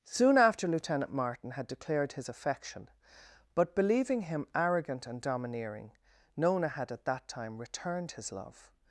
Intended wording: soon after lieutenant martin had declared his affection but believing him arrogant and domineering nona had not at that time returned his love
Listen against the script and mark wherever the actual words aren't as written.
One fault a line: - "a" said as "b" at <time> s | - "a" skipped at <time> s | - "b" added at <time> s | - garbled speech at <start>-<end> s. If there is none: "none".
- "not" skipped at 6.9 s